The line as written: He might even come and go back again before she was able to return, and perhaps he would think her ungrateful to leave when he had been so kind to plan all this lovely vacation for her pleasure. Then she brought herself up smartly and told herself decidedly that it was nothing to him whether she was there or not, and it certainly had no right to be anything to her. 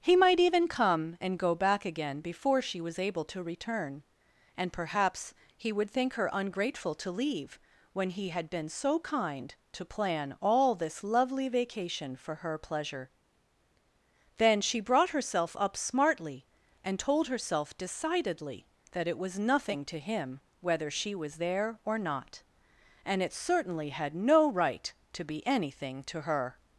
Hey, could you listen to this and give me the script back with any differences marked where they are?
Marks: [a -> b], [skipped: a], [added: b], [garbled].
He might even come and go back again before she was able to return, and perhaps he would think her ungrateful to leave when he had been so kind to plan all this lovely vacation for her pleasure. Then she brought herself up smartly and told herself decidedly that it was nothing to him whether she was there or not, and it certainly had no right to be anything to her.